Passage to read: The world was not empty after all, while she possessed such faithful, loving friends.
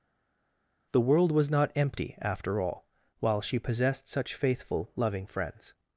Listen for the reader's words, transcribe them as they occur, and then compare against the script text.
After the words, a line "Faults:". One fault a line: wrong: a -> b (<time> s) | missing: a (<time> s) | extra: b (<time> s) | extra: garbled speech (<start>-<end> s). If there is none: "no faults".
The world was not empty after all, while she possessed such faithful, loving friends.
Faults:
no faults